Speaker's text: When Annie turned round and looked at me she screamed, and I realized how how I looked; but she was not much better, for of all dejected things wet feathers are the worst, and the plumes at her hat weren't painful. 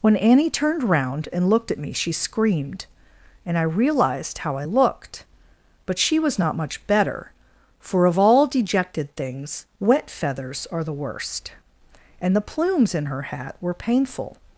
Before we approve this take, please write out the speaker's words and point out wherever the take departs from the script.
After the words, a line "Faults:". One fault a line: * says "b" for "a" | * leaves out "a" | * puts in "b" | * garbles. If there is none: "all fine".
When Annie turned round and looked at me she screamed, and I realized how I looked; but she was not much better, for of all dejected things wet feathers are the worst, and the plumes in her hat were painful.
Faults:
* leaves out "how"
* says "in" for "at"
* says "were" for "weren't"